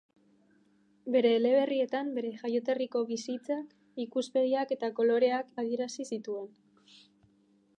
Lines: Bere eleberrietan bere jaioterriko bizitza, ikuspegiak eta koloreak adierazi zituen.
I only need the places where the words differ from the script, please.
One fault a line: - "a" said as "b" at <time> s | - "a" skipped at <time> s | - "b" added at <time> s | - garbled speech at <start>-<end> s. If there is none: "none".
none